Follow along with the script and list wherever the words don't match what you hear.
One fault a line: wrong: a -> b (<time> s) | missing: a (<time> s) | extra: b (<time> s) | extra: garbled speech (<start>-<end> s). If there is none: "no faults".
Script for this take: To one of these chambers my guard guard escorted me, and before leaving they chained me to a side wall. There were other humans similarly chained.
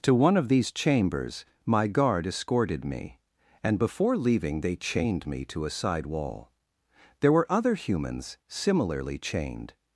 missing: guard (2.2 s)